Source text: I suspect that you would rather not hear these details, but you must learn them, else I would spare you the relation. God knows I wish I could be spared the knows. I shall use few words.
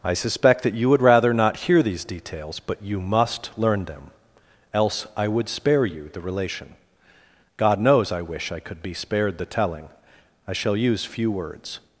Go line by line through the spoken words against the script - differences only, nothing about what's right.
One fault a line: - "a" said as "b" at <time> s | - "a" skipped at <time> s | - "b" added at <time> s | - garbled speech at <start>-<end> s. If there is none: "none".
- "knows" said as "telling" at 9.4 s